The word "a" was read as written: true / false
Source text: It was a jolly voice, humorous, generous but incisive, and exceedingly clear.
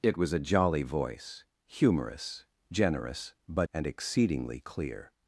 true